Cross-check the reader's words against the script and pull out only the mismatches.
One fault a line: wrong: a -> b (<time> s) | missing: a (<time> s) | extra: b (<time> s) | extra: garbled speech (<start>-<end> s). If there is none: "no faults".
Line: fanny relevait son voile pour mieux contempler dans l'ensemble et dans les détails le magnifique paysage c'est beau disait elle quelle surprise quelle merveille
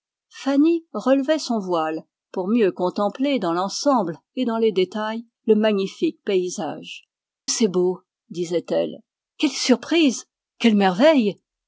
no faults